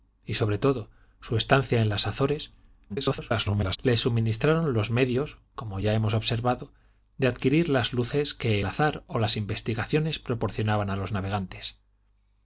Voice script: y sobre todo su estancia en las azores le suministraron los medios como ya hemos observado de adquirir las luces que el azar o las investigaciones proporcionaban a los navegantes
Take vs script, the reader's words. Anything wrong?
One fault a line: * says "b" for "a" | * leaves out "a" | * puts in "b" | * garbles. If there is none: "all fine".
* garbles
* leaves out "el"